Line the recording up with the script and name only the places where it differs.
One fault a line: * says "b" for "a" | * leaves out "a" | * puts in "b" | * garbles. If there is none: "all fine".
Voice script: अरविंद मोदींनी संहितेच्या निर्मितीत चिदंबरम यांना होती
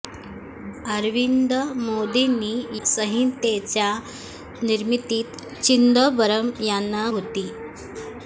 all fine